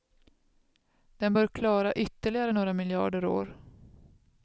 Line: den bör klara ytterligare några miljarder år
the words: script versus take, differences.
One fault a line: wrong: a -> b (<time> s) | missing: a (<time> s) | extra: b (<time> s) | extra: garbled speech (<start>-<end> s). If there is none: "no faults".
no faults